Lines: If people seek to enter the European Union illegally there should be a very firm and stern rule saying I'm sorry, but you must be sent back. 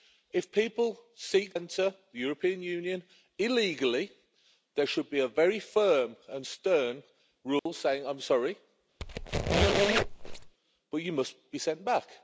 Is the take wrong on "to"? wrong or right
wrong